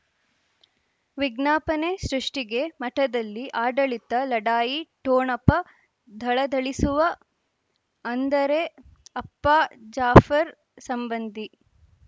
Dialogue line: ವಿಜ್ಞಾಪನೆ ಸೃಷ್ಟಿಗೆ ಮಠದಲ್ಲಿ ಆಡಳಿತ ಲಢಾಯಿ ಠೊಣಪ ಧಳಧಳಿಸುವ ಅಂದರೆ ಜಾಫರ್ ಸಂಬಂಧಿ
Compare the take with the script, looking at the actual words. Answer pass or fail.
fail